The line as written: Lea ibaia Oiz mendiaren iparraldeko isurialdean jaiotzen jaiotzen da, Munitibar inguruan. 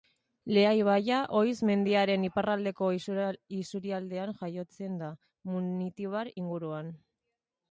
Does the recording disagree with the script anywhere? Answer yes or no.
yes